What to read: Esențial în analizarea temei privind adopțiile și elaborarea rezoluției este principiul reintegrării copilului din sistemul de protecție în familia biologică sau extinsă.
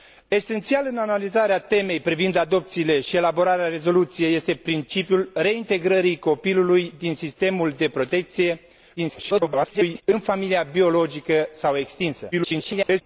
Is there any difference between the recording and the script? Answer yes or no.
yes